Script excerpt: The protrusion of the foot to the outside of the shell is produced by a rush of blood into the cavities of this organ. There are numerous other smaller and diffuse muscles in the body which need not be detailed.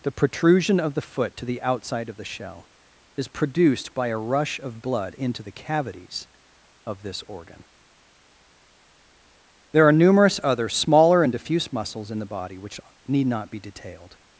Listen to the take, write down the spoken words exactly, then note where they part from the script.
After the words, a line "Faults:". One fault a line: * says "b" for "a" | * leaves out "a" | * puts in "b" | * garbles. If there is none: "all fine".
The protrusion of the foot to the outside of the shell is produced by a rush of blood into the cavities of this organ. There are numerous other smaller and diffuse muscles in the body which need not be detailed.
Faults:
all fine